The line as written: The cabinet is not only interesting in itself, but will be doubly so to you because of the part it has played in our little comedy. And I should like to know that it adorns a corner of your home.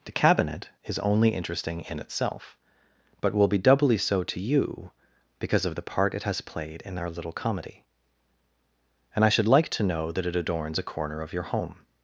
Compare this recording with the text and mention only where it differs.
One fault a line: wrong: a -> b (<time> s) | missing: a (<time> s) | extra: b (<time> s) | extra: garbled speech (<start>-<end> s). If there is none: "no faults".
missing: not (1.0 s)